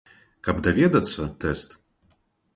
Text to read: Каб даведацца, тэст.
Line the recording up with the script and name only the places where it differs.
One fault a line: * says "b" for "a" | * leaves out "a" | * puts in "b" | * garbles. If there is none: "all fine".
all fine